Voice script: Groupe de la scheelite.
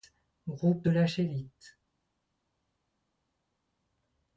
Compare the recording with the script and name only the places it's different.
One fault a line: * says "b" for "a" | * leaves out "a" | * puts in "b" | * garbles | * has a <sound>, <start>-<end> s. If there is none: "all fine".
all fine